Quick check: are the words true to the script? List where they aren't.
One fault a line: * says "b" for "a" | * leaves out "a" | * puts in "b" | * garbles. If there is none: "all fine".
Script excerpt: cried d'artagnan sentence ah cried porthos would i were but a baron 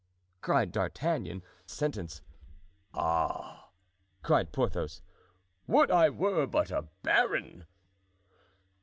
all fine